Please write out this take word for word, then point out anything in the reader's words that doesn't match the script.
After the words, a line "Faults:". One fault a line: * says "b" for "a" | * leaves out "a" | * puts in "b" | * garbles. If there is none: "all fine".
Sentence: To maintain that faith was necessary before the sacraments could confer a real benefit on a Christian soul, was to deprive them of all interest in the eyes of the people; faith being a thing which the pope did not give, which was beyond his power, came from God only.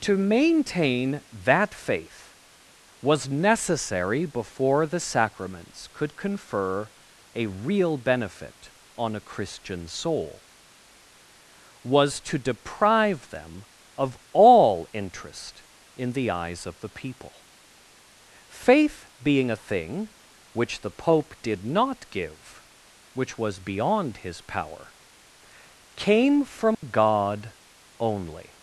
To maintain that faith was necessary before the sacraments could confer a real benefit on a Christian soul, was to deprive them of all interest in the eyes of the people; faith being a thing which the pope did not give, which was beyond his power, came from God only.
Faults:
all fine